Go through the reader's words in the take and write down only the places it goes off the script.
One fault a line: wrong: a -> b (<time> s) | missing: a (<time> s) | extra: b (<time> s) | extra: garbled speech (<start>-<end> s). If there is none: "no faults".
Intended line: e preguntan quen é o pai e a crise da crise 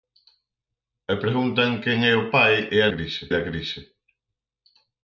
no faults